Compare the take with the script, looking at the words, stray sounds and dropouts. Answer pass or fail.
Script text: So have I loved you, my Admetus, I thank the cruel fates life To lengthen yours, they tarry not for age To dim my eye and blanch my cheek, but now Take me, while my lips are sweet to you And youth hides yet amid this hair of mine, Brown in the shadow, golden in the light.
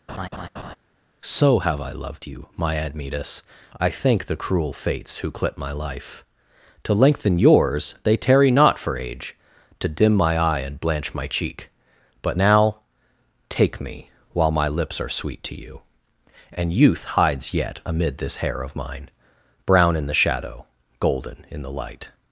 fail